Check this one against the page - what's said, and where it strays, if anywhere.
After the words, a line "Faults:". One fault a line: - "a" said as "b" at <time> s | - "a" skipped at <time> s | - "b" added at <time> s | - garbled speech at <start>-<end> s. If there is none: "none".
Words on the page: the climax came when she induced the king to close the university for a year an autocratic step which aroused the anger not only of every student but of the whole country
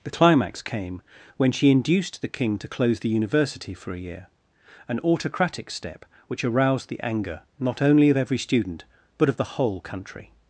the climax came when she induced the king to close the university for a year an autocratic step which aroused the anger not only of every student but of the whole country
Faults:
none